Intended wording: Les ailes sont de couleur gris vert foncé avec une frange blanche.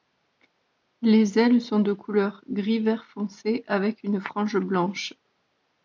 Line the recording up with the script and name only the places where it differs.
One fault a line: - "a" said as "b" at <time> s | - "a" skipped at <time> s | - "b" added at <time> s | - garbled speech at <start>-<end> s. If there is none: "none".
none